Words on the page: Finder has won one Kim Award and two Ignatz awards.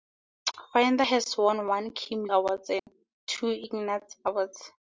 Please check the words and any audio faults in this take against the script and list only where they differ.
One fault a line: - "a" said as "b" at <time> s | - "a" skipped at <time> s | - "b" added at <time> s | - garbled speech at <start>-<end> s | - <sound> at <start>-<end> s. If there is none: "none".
- dropout at 2.8-2.9 s